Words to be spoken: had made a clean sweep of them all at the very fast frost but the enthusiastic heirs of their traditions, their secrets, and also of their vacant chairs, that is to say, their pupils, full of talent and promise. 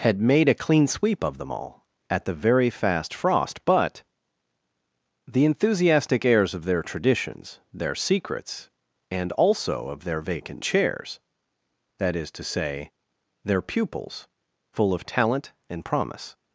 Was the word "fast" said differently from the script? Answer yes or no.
no